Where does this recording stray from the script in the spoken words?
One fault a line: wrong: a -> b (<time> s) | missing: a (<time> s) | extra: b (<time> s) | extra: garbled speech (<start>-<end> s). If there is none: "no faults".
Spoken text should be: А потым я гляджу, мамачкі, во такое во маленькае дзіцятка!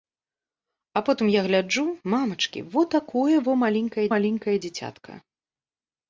extra: маленькае (4.1 s)